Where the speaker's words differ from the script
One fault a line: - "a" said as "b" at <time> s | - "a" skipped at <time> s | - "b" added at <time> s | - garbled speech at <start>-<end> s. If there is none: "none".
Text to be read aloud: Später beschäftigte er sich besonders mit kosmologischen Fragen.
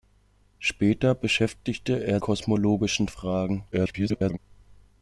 - "sich besonders mit" skipped at 2.2 s
- garbled speech at 3.7-4.4 s